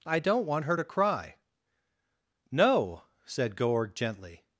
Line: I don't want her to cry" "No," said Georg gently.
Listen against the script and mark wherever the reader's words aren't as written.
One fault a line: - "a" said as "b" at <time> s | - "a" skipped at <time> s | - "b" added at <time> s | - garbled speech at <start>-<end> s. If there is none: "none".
none